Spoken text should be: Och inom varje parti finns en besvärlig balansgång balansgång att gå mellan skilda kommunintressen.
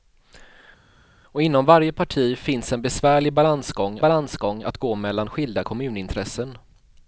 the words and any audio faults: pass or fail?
pass